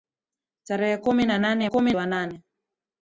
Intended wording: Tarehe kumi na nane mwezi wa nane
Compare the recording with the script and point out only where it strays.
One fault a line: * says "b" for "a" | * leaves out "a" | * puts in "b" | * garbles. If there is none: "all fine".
* says "kumi" for "mwezi"